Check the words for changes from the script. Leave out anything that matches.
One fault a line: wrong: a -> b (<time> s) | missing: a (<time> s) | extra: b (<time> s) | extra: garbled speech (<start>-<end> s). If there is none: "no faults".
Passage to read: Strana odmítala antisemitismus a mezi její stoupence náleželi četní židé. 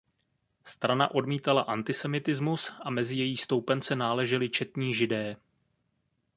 no faults